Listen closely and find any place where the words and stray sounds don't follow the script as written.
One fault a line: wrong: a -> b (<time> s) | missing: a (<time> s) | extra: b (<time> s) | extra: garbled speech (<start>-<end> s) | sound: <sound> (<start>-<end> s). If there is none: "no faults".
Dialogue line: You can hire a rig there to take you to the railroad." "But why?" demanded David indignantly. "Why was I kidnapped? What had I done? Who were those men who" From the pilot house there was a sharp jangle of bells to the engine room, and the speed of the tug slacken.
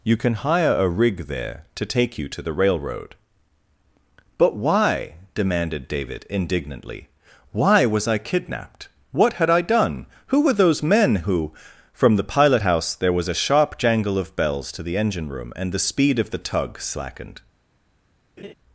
wrong: slacken -> slackened (16.8 s)
sound: laugh (18.4-18.5 s)